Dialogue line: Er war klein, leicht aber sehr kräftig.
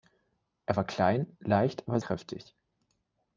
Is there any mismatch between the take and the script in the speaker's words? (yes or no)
yes